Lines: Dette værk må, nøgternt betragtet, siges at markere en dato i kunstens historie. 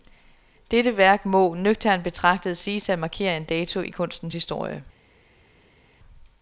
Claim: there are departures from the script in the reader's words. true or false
false